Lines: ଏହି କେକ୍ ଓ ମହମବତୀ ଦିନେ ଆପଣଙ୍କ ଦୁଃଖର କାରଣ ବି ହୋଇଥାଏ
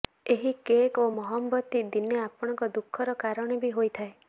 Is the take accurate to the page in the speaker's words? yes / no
yes